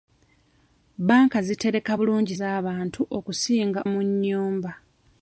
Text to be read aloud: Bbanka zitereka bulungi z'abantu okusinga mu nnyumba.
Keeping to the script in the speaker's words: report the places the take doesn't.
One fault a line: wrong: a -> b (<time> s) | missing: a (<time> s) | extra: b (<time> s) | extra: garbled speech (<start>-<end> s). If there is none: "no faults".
no faults